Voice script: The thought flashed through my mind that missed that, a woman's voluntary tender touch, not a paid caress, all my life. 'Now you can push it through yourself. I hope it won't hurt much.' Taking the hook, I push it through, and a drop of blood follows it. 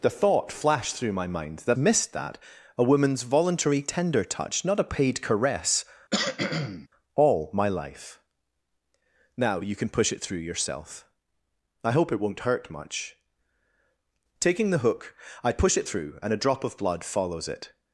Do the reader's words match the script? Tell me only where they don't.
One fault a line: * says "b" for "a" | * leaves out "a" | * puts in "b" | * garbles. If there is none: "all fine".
all fine